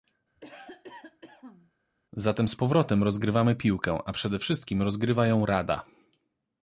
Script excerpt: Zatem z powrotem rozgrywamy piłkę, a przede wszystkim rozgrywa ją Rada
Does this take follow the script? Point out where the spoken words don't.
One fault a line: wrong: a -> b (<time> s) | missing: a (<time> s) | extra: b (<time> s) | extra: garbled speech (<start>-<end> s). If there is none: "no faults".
no faults